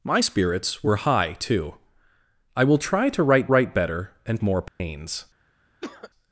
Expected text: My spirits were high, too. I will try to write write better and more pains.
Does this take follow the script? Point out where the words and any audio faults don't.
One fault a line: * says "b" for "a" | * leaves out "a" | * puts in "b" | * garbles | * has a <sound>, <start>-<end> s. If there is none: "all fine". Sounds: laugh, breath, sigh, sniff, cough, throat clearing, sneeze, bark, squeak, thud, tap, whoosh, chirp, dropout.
* has a dropout, 4.7-4.8 s
* has a cough, 5.8-6.1 s